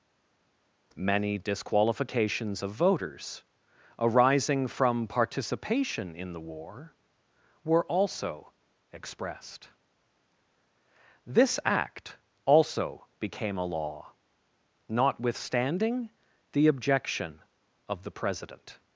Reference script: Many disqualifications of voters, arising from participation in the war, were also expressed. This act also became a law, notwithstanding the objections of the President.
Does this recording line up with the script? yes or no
no